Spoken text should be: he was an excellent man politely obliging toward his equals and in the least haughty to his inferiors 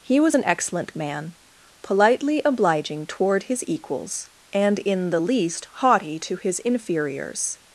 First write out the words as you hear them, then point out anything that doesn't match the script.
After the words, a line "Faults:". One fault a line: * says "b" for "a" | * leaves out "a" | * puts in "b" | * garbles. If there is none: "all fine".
he was an excellent man politely obliging toward his equals and in the least haughty to his inferiors
Faults:
all fine